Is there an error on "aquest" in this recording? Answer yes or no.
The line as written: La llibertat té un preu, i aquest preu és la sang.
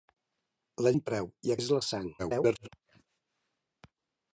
yes